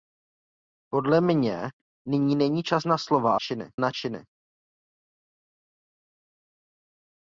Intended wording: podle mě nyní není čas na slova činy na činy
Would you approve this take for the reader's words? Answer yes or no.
yes